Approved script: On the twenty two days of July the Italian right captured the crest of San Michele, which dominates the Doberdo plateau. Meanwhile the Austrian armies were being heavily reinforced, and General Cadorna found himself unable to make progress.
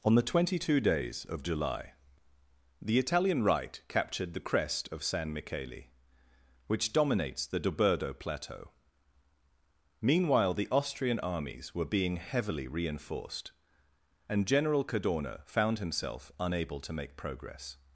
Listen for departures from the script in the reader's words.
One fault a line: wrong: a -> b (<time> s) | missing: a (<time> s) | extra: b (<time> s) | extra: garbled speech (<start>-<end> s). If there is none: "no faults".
no faults